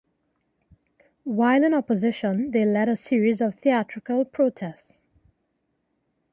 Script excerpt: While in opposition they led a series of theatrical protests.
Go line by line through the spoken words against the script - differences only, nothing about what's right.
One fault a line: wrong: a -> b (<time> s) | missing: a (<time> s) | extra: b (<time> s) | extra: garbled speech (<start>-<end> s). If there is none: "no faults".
no faults